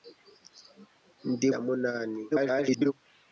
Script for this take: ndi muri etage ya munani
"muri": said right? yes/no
no